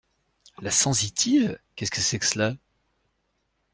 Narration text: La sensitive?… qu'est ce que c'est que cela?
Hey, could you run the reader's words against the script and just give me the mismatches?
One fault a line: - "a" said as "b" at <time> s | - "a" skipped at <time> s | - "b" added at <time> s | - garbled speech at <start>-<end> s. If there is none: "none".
none